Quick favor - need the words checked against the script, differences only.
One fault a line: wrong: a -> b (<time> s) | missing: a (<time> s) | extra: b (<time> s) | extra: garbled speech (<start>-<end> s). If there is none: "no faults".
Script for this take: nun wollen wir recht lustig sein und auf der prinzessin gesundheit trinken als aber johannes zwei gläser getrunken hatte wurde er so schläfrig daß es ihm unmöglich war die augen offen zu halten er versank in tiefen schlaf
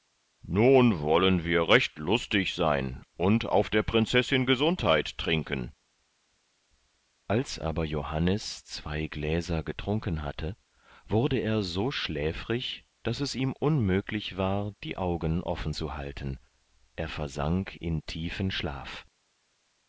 no faults